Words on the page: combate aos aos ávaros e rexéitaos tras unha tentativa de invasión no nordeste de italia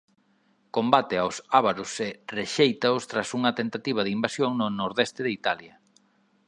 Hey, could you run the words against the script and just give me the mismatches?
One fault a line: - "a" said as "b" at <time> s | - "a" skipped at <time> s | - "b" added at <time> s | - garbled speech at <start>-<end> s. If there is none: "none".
- "aos" skipped at 1.4 s